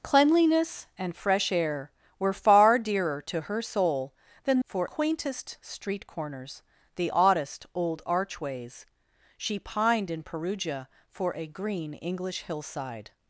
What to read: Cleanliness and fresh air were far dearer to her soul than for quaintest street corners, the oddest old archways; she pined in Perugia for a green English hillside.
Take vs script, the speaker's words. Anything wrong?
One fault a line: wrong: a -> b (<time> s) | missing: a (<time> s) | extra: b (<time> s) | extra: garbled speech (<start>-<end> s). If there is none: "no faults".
no faults